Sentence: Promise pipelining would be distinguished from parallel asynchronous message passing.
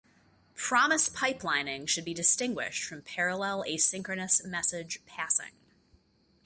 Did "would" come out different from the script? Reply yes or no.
yes